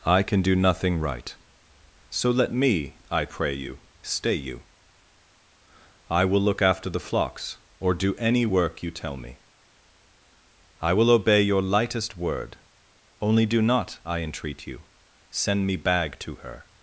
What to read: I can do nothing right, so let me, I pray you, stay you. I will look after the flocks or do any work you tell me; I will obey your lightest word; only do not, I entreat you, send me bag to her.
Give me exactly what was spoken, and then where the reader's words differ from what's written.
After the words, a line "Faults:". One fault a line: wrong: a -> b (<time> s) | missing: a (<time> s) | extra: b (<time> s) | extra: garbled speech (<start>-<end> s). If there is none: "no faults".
I can do nothing right, so let me, I pray you, stay you. I will look after the flocks or do any work you tell me; I will obey your lightest word; only do not, I entreat you, send me bag to her.
Faults:
no faults